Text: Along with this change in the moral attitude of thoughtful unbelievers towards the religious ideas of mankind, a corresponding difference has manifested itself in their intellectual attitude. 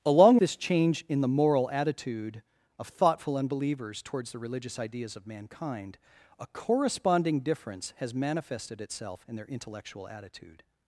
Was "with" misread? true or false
true